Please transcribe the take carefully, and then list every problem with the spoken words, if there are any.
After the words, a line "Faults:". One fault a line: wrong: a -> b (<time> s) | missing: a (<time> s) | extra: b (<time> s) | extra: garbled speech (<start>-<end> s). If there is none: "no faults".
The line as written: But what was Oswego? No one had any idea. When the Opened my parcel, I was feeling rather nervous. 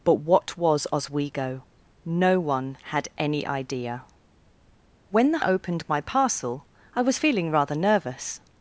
But what was Oswego? No one had any idea. When the Opened my parcel, I was feeling rather nervous.
Faults:
no faults